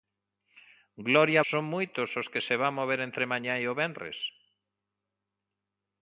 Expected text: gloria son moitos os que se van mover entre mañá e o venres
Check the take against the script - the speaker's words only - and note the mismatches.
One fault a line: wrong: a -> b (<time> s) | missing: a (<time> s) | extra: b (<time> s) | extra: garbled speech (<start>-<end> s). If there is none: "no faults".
no faults